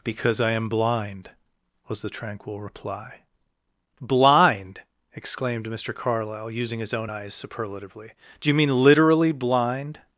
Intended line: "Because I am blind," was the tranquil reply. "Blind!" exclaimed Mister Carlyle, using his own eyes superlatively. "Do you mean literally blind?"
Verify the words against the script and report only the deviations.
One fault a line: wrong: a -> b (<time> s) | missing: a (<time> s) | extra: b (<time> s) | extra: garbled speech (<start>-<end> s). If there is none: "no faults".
no faults